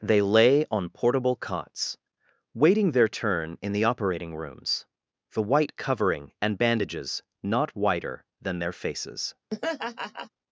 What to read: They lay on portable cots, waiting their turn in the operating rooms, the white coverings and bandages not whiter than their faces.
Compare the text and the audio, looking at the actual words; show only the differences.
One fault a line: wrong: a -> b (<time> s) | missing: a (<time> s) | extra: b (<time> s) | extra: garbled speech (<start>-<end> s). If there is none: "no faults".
wrong: coverings -> covering (5.8 s)